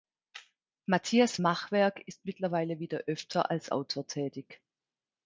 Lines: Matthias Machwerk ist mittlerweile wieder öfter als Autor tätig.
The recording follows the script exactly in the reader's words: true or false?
true